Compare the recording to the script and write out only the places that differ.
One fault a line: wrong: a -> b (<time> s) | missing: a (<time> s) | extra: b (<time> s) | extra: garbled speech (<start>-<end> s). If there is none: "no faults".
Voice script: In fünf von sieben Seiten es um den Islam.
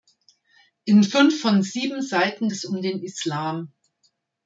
no faults